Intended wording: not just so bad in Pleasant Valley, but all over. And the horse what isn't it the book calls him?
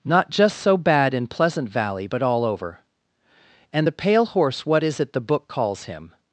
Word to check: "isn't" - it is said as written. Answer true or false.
false